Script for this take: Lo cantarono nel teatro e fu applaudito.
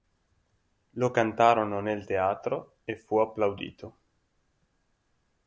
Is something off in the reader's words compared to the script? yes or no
no